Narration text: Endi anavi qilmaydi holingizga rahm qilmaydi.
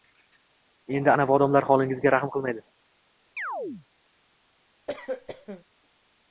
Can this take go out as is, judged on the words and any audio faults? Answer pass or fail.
fail